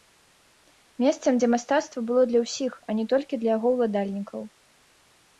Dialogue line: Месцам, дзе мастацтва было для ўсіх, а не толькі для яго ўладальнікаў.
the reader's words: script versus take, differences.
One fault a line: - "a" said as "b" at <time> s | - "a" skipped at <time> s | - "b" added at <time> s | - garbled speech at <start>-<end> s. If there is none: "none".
none